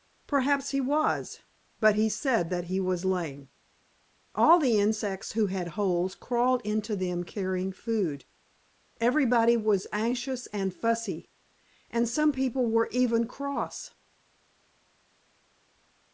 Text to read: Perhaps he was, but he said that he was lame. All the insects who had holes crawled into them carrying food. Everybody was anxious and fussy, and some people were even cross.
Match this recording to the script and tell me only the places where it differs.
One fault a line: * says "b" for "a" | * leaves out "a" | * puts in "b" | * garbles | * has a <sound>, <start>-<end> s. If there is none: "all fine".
all fine